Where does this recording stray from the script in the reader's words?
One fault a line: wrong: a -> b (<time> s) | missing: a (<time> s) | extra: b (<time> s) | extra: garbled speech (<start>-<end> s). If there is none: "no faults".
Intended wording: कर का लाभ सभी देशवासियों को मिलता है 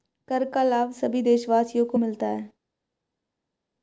no faults